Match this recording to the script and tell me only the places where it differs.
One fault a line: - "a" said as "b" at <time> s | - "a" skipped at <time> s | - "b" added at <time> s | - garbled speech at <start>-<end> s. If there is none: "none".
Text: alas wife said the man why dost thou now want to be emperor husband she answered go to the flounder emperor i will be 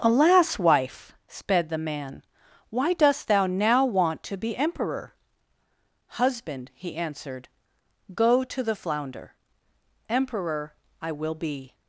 - "said" said as "sped" at 1.3 s
- "she" said as "he" at 6.7 s